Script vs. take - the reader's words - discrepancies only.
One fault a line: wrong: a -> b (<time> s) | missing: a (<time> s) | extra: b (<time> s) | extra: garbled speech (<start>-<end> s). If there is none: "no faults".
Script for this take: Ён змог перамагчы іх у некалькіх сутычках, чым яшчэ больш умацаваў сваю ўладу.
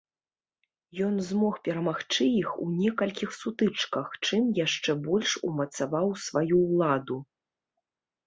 no faults